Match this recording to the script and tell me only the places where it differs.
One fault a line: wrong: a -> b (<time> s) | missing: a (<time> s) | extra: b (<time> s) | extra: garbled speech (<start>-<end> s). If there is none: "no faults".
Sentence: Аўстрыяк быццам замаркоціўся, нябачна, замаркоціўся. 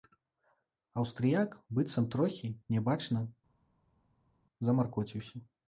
wrong: замаркоціўся -> трохі (2.2 s)